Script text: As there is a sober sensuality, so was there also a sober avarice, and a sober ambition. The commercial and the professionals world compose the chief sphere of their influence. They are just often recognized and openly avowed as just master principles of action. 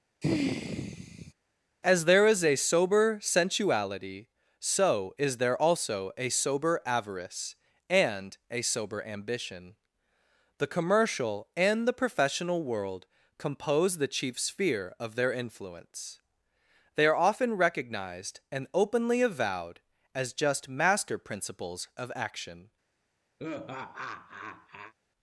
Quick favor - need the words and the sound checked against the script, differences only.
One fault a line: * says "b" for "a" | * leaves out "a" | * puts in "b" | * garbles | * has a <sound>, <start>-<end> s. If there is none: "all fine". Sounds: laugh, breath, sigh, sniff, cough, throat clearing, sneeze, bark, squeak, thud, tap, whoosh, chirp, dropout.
* has a sigh, 0.2-1.3 s
* says "is" for "was"
* says "professional" for "professionals"
* leaves out "just"
* has a laugh, 23.4-24.9 s